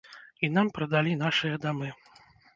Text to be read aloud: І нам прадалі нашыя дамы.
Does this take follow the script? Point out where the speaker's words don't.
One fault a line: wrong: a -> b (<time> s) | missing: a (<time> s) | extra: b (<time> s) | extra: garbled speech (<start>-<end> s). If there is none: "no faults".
no faults